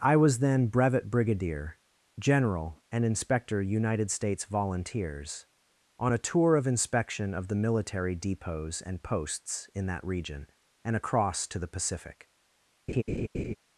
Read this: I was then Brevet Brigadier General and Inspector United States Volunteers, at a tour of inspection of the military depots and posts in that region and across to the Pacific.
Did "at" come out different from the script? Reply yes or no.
yes